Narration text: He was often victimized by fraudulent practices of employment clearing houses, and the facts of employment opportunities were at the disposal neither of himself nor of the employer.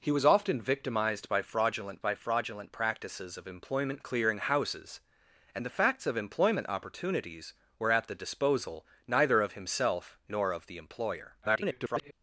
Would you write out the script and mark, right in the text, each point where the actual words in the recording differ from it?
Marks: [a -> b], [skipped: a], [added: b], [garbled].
He was often victimized by fraudulent [added: by fraudulent] practices of employment clearing houses, and the facts of employment opportunities were at the disposal neither of himself nor of the employer. [garbled]